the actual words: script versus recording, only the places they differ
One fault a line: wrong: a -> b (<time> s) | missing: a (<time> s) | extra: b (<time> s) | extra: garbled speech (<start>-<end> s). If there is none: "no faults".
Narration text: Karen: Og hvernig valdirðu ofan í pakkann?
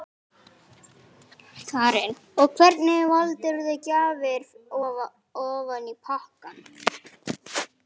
extra: gjafir (3.9 s)